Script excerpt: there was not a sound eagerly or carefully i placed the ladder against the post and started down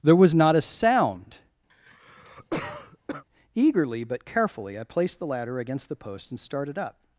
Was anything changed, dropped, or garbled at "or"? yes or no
yes